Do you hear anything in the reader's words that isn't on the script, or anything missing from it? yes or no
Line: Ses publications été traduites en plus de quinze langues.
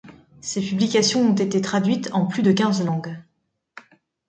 yes